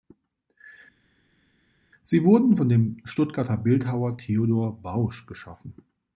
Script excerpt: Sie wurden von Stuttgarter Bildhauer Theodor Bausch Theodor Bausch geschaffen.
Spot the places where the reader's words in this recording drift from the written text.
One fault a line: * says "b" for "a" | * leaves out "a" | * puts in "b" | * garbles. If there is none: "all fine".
* puts in "dem"
* leaves out "Theodor Bausch"